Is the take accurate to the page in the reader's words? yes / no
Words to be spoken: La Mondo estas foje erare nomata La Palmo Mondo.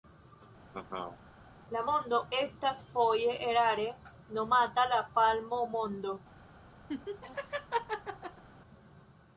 yes